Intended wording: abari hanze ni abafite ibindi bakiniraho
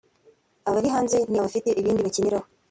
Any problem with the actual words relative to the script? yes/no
no